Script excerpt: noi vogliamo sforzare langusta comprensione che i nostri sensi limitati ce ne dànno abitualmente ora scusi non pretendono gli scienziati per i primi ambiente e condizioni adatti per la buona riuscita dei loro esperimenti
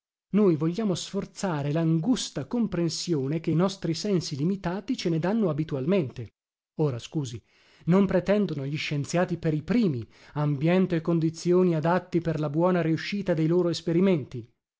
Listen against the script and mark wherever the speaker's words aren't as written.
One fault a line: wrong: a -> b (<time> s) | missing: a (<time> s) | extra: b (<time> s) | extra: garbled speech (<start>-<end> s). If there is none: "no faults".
no faults